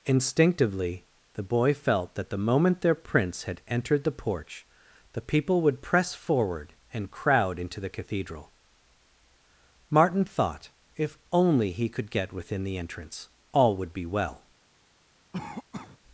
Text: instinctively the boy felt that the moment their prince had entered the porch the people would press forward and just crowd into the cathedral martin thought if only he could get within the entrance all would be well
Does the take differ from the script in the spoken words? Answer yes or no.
yes